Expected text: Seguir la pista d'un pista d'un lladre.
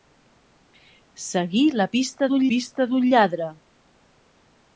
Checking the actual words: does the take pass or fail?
pass